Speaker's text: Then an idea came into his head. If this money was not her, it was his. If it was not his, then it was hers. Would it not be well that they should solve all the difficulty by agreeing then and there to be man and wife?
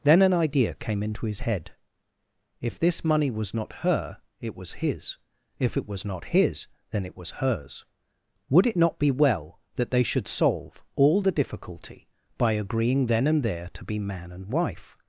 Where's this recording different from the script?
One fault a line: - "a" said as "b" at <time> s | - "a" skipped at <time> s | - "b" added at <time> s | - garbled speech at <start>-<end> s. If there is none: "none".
none